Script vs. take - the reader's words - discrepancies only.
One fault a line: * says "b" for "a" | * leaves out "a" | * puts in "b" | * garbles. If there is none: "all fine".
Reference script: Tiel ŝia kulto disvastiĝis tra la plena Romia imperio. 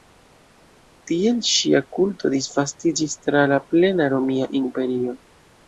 all fine